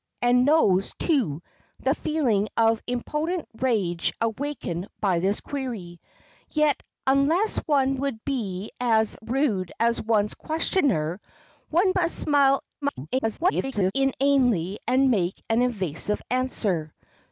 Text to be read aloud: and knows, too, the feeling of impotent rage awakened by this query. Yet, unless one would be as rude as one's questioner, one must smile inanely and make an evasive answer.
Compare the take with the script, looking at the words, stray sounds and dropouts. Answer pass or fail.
fail